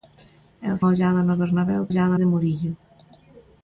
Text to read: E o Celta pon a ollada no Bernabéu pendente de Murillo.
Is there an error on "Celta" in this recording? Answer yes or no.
yes